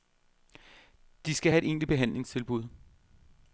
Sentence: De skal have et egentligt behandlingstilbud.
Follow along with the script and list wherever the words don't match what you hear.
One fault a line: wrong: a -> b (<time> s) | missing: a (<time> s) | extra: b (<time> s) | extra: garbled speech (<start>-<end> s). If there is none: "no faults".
no faults